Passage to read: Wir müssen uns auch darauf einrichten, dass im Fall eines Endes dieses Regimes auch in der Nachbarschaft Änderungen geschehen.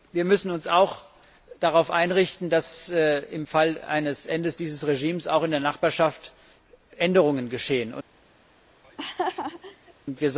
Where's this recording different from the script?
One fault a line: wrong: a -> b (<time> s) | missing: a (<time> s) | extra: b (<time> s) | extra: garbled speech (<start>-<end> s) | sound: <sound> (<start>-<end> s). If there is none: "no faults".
sound: laugh (8.8-9.9 s)